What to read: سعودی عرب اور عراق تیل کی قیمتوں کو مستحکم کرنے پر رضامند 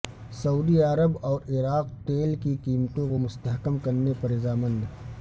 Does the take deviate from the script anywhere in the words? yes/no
no